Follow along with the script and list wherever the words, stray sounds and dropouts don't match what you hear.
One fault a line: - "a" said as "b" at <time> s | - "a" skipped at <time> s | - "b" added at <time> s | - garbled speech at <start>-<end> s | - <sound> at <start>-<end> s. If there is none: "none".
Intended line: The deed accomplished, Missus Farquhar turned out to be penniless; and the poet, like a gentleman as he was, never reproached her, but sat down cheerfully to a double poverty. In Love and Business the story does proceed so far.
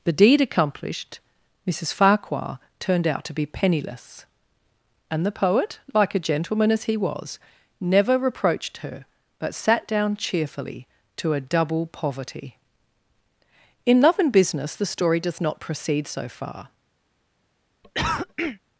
- "not" added at 15.4 s
- cough at 17.8-18.6 s